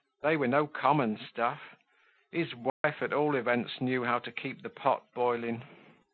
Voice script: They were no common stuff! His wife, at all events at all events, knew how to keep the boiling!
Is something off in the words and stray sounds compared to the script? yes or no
yes